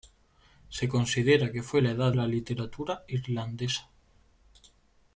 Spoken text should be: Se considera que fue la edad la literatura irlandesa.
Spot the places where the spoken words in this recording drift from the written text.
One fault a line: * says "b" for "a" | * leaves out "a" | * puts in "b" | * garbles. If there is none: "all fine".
all fine